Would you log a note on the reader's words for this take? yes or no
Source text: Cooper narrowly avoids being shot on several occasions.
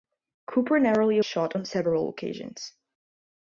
yes